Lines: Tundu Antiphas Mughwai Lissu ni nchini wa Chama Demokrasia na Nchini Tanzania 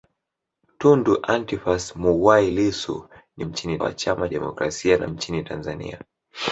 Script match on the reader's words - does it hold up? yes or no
yes